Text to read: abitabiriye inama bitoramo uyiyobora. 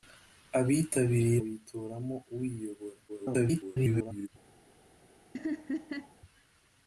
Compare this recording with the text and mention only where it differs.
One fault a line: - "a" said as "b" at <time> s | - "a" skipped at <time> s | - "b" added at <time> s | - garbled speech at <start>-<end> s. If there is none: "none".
- "inama" skipped at 1.4 s
- garbled speech at 3.1-4.3 s